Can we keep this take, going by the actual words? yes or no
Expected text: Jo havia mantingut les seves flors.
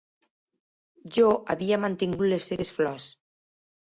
yes